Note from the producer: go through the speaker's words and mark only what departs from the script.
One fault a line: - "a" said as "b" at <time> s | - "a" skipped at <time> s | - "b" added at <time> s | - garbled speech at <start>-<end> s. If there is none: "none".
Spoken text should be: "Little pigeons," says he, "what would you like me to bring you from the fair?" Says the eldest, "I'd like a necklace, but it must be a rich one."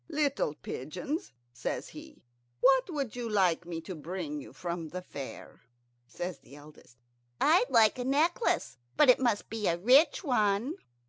none